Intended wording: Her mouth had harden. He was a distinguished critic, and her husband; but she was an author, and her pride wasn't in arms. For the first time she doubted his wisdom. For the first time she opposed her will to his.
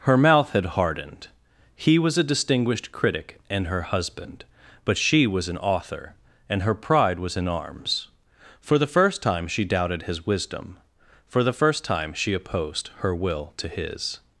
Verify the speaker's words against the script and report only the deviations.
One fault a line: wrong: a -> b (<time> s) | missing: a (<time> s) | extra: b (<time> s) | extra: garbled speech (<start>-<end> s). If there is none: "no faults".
wrong: harden -> hardened (0.7 s)
wrong: wasn't -> was (7.2 s)